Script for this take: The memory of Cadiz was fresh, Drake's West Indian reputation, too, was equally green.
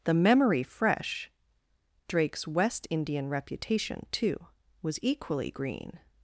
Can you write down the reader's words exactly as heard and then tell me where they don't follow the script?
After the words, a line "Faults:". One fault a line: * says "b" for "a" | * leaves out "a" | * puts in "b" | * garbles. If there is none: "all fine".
The memory fresh, Drake's West Indian reputation, too, was equally green.
Faults:
* leaves out "of Cadiz was"